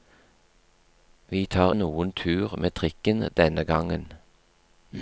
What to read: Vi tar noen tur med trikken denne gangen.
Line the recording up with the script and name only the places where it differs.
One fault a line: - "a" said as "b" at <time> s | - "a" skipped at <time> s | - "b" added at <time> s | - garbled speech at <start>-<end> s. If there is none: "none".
none